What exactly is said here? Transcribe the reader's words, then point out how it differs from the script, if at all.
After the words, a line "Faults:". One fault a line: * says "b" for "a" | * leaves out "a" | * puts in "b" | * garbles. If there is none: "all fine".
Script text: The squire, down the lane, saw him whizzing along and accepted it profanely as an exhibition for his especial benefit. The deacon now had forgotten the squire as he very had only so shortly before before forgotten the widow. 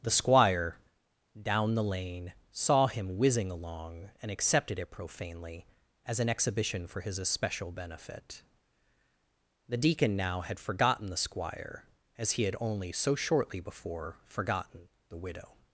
The squire, down the lane, saw him whizzing along and accepted it profanely as an exhibition for his especial benefit. The deacon now had forgotten the squire as he had only so shortly before forgotten the widow.
Faults:
* leaves out "very"
* leaves out "before"